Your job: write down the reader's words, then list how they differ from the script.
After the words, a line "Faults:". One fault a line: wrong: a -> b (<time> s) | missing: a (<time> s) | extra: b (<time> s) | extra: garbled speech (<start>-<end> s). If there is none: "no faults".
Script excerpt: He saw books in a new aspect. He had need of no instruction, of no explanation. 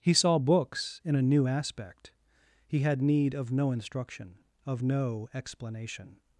He saw books in a new aspect. He had need of no instruction, of no explanation.
Faults:
no faults